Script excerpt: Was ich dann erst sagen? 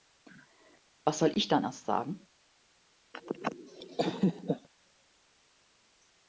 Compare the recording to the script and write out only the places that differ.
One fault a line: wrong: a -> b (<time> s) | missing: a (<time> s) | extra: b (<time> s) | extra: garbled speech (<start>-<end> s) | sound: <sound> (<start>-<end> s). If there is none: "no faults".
extra: soll (1.2 s)
sound: laugh (3.1-4.7 s)